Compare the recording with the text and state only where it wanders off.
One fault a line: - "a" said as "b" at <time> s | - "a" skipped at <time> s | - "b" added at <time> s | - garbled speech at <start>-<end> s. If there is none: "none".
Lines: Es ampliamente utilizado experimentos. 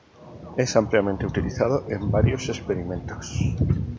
- "en varios" added at 1.9 s